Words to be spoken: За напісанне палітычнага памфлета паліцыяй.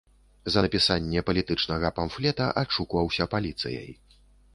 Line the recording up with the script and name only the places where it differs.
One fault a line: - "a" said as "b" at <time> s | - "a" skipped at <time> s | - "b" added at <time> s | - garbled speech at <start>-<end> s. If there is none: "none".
- "адшукваўся" added at 2.6 s